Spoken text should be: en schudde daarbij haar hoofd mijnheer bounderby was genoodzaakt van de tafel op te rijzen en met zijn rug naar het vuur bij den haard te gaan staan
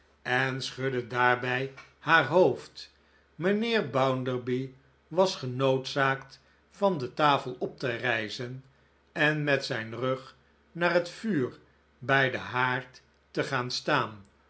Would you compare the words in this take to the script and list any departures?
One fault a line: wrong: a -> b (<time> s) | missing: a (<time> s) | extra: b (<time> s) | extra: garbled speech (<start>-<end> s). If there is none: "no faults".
no faults